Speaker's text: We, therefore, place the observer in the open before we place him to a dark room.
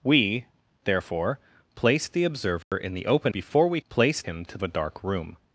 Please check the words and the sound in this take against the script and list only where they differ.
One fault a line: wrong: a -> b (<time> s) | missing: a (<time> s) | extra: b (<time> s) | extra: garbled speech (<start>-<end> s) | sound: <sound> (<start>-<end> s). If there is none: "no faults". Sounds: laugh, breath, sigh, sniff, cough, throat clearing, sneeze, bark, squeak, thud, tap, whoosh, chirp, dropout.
sound: dropout (2.6-2.7 s)